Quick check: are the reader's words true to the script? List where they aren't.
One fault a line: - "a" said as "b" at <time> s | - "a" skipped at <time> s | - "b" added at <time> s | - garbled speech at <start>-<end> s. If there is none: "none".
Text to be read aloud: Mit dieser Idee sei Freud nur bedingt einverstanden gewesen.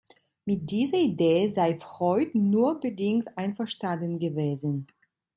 none